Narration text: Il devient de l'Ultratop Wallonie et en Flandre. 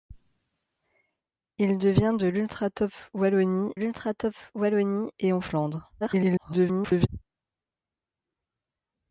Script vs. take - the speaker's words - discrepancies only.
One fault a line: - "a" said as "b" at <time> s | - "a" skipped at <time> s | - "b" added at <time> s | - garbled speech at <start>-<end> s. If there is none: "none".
- "l'Ultratop Wallonie" added at 3.7 s
- garbled speech at 6.0-7.1 s